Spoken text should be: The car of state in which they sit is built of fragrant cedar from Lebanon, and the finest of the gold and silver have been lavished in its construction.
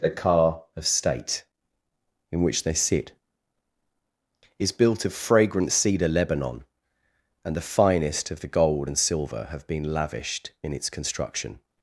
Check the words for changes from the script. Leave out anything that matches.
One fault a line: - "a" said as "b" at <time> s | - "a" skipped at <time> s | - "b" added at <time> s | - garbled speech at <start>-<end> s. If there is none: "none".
- "from" skipped at 6.1 s